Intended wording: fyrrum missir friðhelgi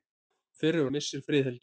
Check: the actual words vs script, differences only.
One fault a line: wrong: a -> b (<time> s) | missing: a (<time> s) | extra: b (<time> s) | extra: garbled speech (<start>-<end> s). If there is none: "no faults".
no faults